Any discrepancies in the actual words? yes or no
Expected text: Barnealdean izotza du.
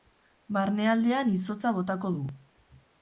yes